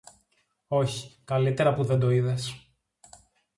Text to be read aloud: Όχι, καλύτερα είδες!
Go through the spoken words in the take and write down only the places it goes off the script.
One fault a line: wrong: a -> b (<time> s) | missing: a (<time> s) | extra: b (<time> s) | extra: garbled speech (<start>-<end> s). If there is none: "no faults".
extra: που δεν το (1.7 s)